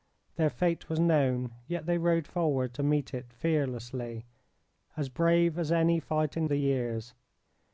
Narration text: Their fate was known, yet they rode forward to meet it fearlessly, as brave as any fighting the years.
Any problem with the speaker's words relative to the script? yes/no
no